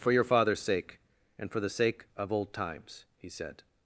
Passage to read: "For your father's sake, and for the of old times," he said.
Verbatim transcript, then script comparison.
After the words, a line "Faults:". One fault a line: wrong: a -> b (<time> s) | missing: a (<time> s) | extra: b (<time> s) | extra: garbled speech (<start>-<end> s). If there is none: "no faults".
"For your father's sake, and for the sake of old times," he said.
Faults:
extra: sake (1.7 s)